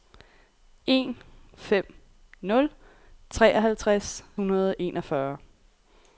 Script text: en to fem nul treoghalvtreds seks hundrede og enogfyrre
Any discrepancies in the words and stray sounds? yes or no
yes